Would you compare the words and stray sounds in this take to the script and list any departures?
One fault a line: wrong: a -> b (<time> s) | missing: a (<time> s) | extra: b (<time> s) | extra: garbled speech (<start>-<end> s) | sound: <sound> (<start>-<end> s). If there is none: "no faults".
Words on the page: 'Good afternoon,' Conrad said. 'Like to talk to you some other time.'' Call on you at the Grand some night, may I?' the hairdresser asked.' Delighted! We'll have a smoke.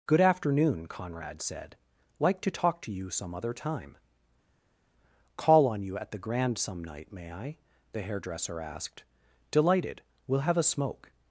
no faults